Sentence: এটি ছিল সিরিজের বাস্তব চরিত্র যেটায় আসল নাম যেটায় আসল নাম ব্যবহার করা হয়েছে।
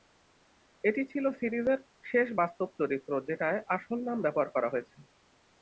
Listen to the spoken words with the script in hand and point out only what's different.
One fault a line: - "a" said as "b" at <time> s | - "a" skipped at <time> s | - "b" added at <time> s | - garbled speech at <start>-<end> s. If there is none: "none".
- "শেষ" added at 2.0 s
- "যেটায় আসল নাম" skipped at 4.2 s